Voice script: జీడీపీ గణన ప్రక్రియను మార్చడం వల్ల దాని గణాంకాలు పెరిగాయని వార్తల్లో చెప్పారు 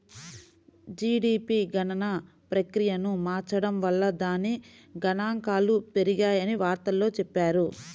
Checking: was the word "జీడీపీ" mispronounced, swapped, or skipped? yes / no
no